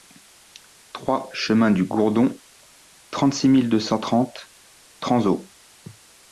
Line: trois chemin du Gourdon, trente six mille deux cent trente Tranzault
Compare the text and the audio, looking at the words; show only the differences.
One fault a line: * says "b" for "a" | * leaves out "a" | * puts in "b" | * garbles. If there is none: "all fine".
all fine